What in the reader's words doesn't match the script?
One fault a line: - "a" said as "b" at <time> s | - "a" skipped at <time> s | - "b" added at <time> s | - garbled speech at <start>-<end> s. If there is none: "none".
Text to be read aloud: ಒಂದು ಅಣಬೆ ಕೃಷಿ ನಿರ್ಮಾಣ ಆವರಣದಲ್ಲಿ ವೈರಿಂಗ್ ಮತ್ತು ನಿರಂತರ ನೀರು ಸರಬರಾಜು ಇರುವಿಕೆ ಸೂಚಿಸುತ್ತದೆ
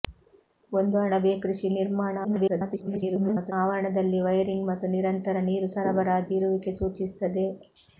- garbled speech at 2.2-3.5 s